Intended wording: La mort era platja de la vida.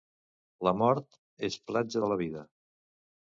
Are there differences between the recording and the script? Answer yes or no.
yes